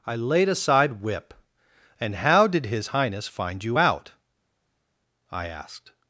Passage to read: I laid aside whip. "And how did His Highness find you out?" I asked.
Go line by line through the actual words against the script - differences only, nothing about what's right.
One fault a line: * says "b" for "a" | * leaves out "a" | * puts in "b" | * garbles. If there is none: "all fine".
all fine